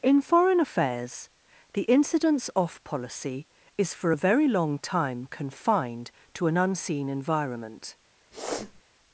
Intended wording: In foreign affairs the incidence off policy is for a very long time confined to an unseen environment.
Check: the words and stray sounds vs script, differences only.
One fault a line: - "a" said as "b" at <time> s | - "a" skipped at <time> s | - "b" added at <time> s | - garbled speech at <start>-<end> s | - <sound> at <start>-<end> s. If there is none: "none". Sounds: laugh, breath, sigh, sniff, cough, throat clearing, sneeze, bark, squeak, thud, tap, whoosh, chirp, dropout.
- sniff at 8.3-8.8 s